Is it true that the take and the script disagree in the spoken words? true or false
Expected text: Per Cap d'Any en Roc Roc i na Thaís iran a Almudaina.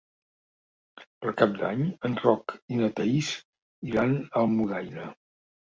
true